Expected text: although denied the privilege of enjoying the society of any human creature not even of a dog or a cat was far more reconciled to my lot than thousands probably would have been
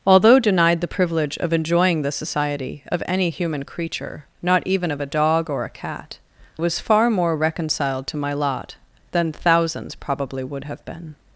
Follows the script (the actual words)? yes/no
yes